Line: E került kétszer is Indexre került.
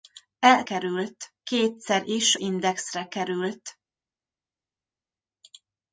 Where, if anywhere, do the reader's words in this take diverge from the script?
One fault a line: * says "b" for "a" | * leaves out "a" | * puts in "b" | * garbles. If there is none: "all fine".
all fine